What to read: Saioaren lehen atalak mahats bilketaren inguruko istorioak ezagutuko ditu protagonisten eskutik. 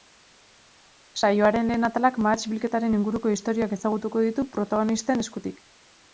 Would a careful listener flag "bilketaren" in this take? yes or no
no